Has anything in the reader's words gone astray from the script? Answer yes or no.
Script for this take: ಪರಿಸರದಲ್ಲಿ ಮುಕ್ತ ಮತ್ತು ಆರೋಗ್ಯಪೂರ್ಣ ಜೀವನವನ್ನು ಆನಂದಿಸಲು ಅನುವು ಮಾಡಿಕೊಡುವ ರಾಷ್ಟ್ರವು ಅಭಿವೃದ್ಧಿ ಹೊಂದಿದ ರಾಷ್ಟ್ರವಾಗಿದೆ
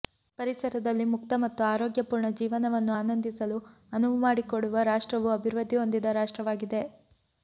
no